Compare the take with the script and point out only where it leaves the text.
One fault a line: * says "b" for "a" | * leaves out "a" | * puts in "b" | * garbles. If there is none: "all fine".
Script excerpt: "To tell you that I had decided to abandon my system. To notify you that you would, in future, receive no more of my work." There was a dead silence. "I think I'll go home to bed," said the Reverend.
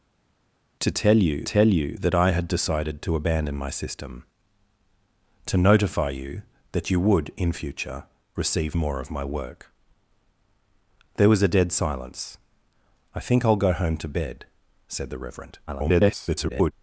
* puts in "tell you"
* leaves out "no"
* garbles